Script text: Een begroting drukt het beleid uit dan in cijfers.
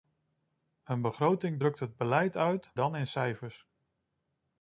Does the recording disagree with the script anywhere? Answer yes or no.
no